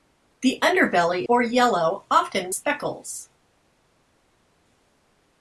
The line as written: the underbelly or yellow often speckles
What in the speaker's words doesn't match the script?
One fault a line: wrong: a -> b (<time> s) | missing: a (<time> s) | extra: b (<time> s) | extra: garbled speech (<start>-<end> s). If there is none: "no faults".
no faults